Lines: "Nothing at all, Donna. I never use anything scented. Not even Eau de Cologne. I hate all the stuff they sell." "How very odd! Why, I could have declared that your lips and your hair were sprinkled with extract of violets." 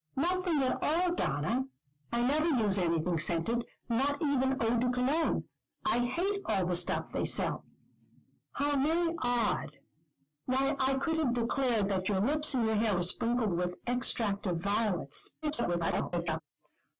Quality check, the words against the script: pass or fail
fail